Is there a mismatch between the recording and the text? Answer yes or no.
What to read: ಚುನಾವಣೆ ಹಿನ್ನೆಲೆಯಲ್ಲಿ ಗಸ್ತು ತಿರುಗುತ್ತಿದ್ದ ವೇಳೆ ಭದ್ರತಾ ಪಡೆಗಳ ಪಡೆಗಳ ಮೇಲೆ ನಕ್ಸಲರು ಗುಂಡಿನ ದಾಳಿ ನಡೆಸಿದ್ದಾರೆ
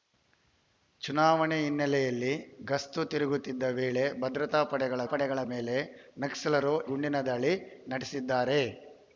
no